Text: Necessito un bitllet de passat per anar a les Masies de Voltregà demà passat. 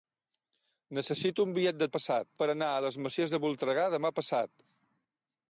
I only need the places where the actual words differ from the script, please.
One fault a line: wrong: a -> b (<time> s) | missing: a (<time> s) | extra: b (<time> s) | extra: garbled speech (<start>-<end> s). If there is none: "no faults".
no faults